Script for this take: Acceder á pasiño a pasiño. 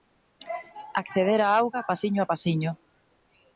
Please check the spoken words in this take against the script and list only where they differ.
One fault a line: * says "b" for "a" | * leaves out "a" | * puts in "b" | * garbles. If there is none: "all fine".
* puts in "auga"